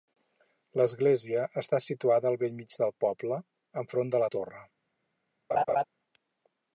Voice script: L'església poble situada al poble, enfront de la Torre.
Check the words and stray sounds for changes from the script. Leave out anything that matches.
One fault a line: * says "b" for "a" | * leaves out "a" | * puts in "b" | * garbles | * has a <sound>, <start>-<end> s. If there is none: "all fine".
* says "està" for "poble"
* puts in "bell mig del"
* has a laugh, 5.5-5.8 s